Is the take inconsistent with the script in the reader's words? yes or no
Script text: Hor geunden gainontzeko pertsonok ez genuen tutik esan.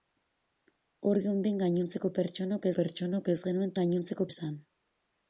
yes